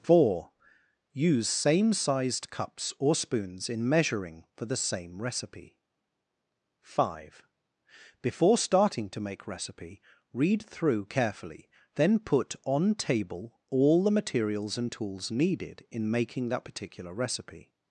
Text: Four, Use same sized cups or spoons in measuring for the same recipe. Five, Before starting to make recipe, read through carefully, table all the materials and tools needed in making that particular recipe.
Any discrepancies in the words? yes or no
yes